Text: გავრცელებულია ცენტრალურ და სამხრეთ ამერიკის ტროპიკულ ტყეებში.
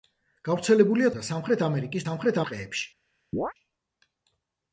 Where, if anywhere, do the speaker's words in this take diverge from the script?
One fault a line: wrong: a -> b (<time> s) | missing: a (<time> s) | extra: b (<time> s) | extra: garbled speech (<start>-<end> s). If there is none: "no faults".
missing: ცენტრალურ (1.1 s)
wrong: ტროპიკულ -> სამხრეთ (2.0 s)